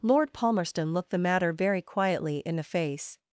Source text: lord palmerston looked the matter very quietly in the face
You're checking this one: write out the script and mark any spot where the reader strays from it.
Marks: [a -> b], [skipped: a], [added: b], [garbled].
lord palmerston looked the matter very quietly in the face